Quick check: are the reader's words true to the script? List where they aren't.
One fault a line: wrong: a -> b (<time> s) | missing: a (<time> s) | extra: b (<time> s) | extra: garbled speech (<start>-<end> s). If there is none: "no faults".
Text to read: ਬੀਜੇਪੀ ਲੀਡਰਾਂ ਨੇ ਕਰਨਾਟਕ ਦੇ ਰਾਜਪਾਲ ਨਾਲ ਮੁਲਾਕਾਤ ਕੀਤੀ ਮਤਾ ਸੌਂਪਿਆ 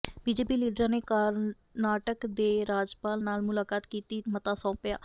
no faults